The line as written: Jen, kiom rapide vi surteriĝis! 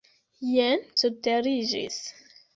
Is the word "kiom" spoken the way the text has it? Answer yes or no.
no